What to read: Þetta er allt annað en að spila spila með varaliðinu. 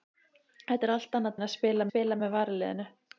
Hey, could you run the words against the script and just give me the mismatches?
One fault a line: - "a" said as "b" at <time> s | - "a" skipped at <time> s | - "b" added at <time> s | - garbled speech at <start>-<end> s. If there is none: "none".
none